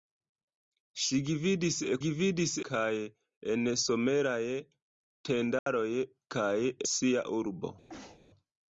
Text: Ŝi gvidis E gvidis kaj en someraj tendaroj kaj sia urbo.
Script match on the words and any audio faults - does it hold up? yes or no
no